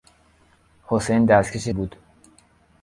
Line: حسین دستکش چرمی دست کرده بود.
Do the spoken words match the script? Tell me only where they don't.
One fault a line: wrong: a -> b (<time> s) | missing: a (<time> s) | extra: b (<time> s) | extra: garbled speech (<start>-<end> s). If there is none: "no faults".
missing: چرمی دست کرده (1.7 s)